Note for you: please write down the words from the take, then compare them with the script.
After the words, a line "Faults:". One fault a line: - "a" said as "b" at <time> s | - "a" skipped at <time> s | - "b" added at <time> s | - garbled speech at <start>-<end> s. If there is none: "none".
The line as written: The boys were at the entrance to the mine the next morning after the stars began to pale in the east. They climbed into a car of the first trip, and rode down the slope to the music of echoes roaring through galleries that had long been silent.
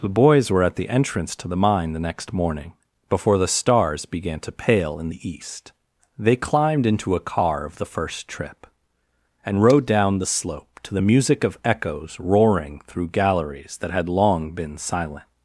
The boys were at the entrance to the mine the next morning before the stars began to pale in the east. They climbed into a car of the first trip, and rode down the slope to the music of echoes roaring through galleries that had long been silent.
Faults:
- "after" said as "before" at 3.1 s